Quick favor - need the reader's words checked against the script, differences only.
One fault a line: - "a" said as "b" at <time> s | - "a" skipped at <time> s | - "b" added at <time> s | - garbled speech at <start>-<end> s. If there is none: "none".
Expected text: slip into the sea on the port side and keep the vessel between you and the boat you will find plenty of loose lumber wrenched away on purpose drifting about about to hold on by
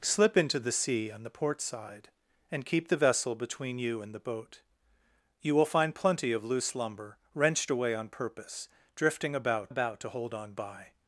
none